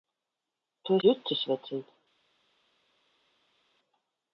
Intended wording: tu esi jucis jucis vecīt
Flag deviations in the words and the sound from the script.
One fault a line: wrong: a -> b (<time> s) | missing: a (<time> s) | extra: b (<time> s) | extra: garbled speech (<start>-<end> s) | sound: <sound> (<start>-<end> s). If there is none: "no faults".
missing: esi jucis (1.0 s)